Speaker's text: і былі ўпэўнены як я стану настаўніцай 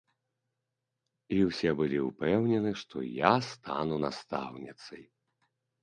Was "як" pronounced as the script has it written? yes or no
no